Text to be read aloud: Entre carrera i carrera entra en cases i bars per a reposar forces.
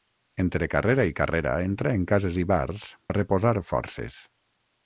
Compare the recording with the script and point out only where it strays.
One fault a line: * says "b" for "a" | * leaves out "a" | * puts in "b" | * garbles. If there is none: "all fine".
* leaves out "per"